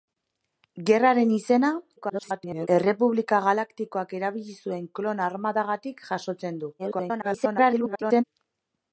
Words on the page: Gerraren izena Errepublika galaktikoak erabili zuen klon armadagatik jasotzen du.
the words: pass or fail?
fail